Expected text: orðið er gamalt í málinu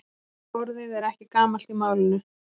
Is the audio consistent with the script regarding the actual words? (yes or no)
no